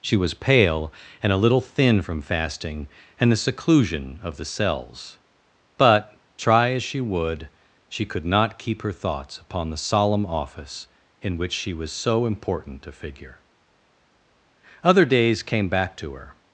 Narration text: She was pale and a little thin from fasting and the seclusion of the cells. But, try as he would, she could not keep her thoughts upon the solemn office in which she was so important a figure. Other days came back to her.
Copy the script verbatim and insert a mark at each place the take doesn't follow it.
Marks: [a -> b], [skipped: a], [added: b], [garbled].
She was pale and a little thin from fasting and the seclusion of the cells. But, try as [he -> she] would, she could not keep her thoughts upon the solemn office in which she was so important a figure. Other days came back to her.